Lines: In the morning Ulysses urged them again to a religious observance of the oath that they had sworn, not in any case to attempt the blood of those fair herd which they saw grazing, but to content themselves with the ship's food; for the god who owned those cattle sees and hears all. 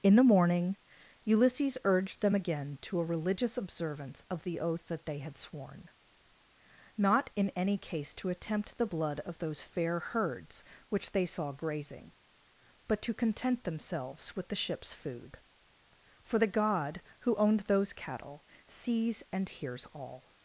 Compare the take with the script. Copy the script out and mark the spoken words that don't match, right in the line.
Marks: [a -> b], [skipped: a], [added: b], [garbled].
In the morning Ulysses urged them again to a religious observance of the oath that they had sworn, not in any case to attempt the blood of those fair [herd -> herds] which they saw grazing, but to content themselves with the ship's food; for the god who owned those cattle sees and hears all.